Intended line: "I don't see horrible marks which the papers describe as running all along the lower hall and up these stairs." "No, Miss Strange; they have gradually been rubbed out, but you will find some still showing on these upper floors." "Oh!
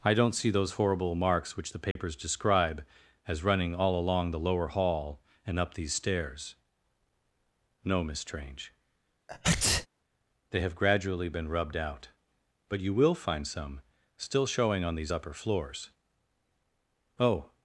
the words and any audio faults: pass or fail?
fail